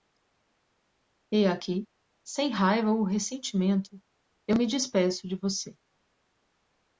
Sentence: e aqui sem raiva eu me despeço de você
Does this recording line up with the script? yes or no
no